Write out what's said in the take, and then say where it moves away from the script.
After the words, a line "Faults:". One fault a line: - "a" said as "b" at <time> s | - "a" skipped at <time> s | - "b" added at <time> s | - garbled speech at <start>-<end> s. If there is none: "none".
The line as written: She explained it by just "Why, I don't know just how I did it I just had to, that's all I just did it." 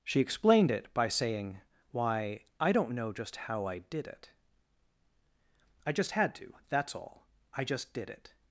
She explained it by saying "Why, I don't know just how I did it I just had to, that's all I just did it."
Faults:
- "just" said as "saying" at 1.1 s